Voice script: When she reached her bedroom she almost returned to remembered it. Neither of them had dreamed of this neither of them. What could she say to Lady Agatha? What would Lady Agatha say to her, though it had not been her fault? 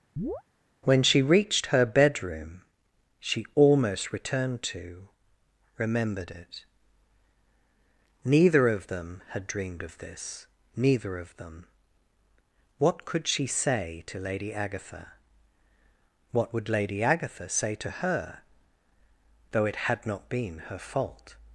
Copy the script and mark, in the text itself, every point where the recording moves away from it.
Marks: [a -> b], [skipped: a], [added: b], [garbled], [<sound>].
[chirp] When she reached her bedroom she almost returned to remembered it. Neither of them had dreamed of this neither of them. What could she say to Lady Agatha? What would Lady Agatha say to her, though it had not been her fault?